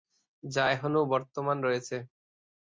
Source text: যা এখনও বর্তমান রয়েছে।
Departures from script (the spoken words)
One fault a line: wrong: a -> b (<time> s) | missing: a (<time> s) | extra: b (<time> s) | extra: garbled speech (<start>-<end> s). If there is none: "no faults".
no faults